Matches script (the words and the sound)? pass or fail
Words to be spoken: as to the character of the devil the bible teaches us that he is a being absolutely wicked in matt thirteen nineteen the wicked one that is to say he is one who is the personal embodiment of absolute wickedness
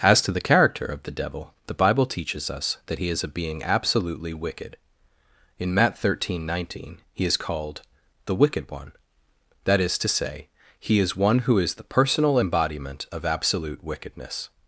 fail